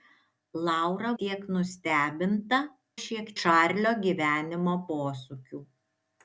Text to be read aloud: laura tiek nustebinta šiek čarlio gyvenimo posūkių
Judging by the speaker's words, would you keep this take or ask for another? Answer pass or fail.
pass